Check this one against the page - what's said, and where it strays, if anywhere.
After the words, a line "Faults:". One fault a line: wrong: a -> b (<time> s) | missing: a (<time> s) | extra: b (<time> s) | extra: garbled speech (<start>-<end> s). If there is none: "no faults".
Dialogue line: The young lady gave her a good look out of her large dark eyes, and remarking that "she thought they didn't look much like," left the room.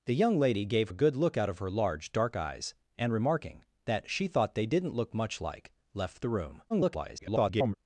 The young lady gave a good look out of her large dark eyes, and remarking that "she thought they didn't look much like," left the room. [garbled]
Faults:
missing: her (0.9 s)
extra: garbled speech (6.7-7.7 s)